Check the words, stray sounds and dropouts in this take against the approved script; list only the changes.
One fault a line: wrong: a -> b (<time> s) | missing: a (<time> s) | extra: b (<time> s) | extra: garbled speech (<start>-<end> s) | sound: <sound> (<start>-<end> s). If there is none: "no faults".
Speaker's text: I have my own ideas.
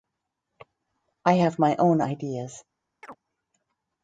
sound: chirp (3.0-3.2 s)